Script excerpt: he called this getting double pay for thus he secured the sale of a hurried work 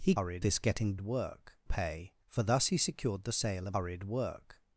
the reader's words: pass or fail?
fail